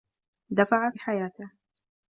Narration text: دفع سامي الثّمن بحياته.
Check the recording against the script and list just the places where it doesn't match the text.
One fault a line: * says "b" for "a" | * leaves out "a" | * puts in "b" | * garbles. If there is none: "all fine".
* leaves out "سامي الثّمن"